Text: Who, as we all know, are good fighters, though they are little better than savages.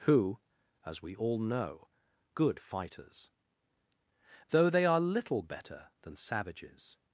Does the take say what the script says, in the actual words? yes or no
no